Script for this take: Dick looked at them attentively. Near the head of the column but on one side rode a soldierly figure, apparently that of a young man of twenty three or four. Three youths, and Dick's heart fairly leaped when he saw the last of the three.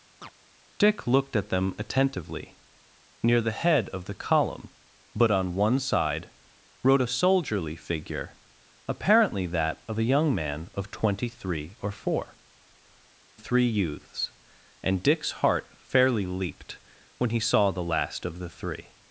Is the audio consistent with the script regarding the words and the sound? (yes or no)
no